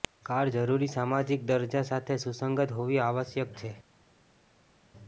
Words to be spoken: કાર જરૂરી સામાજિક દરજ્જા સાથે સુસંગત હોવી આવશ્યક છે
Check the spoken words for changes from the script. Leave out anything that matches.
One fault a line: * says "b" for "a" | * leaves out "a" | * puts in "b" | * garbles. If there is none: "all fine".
all fine